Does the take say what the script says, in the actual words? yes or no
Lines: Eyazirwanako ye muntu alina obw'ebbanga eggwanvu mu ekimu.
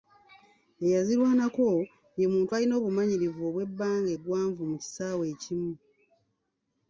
no